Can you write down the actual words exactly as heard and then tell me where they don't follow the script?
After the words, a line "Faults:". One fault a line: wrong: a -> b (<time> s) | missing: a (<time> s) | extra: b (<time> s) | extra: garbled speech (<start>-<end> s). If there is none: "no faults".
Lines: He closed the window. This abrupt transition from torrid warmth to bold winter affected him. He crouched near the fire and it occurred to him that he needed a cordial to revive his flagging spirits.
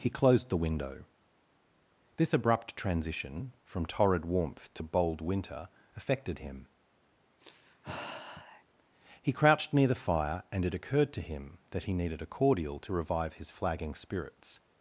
He closed the window. This abrupt transition from torrid warmth to bold winter affected him. He crouched near the fire and it occurred to him that he needed a cordial to revive his flagging spirits.
Faults:
no faults